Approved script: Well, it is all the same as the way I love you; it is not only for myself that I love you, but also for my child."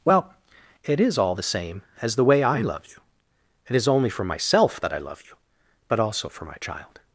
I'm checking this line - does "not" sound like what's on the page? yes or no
no